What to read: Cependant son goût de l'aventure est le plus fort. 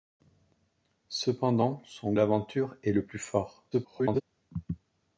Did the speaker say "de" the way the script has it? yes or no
no